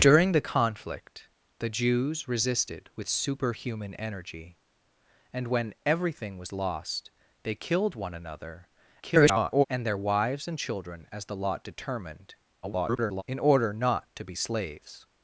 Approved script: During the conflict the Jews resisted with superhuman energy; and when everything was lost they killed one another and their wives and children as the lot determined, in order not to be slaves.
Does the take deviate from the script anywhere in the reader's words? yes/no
yes